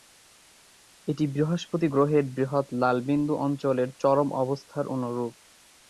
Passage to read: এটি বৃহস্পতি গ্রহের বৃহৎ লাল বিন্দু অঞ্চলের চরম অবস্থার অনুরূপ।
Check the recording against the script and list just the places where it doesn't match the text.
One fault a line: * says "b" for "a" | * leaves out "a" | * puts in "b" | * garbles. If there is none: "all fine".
all fine